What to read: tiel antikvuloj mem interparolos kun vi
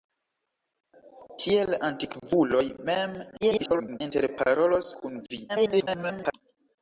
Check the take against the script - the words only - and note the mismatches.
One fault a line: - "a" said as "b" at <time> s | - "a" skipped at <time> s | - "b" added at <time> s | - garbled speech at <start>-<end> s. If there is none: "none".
- garbled speech at 3.4-4.0 s
- garbled speech at 5.5-6.3 s